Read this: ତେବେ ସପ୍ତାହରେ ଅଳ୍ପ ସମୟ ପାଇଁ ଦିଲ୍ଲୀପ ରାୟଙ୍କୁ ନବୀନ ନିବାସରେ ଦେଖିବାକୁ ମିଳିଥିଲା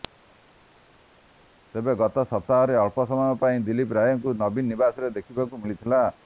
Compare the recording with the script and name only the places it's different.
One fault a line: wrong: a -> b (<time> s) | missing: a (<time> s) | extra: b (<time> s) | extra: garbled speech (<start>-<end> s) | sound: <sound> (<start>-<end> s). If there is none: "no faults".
extra: ଗତ (2.0 s)